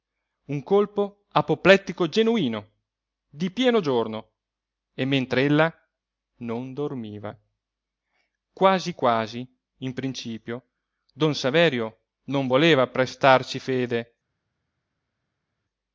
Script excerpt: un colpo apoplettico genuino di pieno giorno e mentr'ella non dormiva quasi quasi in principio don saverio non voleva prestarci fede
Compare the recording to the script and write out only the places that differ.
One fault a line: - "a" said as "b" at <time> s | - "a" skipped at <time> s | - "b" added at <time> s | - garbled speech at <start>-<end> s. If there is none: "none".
none